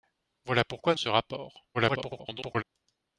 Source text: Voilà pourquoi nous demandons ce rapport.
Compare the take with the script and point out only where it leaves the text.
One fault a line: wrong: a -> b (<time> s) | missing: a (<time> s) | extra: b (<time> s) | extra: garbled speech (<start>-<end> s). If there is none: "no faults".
missing: nous demandons (0.9 s)
extra: garbled speech (1.7-2.6 s)